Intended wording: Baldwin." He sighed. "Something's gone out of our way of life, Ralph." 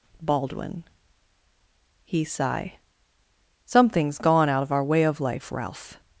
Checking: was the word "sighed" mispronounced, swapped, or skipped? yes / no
yes